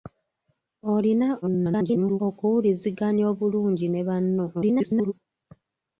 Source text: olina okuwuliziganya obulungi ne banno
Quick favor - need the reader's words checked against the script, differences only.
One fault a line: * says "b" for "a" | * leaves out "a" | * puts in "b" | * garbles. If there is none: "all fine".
* garbles
* garbles